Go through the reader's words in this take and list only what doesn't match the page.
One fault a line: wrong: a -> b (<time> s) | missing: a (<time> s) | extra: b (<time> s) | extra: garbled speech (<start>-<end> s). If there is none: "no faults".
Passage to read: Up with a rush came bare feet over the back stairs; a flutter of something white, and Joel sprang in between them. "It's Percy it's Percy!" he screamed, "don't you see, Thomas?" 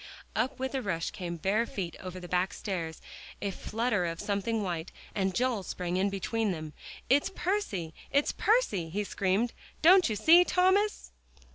no faults